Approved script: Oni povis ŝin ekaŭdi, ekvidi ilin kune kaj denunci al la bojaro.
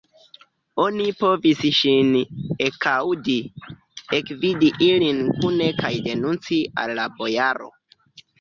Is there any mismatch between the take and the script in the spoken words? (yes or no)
no